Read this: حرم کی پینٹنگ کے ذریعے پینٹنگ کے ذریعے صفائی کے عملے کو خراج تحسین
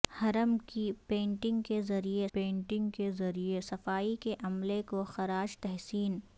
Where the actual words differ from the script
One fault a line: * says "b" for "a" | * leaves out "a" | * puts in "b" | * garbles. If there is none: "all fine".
all fine